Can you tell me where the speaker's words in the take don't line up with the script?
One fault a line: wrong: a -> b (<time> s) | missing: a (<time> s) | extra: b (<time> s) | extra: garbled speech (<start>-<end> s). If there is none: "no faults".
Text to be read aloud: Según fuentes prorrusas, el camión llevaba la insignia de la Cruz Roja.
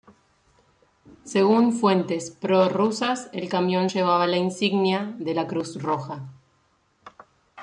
no faults